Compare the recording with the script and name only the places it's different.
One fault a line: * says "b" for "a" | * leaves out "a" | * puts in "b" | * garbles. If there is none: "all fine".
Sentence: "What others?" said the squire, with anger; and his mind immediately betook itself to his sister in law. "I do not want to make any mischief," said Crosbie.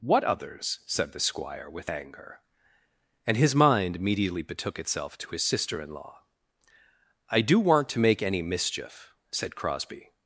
* leaves out "not"